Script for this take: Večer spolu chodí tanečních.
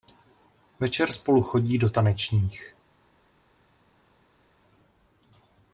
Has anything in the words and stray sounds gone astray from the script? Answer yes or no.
yes